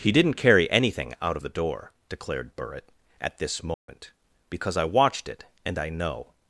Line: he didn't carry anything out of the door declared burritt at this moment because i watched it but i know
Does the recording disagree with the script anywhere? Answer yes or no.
yes